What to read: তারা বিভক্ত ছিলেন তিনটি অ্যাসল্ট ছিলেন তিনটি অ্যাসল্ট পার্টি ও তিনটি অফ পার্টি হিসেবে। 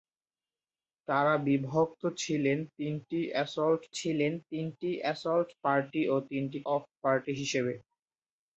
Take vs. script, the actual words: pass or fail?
pass